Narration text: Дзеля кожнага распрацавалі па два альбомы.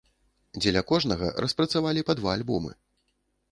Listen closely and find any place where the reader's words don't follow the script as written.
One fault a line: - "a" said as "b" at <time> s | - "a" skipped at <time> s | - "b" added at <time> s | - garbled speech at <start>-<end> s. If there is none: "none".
none